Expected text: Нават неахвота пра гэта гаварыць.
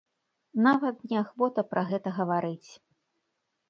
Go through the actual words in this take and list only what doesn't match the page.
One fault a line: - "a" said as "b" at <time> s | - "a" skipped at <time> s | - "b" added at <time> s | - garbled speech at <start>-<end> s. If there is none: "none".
none